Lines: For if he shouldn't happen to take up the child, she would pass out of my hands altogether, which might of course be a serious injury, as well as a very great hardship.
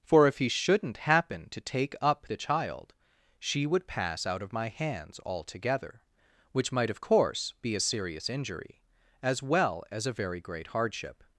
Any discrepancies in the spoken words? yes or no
no